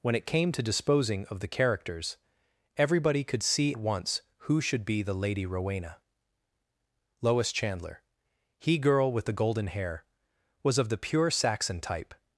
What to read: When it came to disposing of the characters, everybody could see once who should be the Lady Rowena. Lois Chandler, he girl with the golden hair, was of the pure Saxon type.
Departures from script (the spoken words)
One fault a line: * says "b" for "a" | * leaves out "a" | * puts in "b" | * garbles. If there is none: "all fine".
all fine